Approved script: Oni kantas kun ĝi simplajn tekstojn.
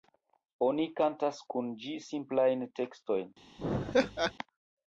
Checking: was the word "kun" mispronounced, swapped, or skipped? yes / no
no